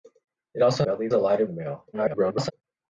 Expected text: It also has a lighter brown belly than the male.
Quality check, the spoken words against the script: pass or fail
fail